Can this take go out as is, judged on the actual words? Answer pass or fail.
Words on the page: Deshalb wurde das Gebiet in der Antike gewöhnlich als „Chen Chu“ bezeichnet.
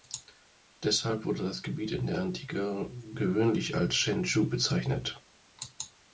pass